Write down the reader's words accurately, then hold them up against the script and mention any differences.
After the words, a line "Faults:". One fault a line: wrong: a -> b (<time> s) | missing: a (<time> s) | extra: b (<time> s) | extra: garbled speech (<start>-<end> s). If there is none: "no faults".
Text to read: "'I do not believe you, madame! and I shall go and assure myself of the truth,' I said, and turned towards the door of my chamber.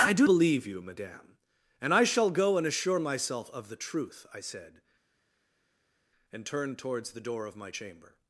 "'I do believe you, madame! and I shall go and assure myself of the truth,' I said, and turned towards the door of my chamber.
Faults:
missing: not (0.3 s)